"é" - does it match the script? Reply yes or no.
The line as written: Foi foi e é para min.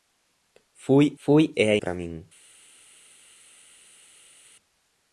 yes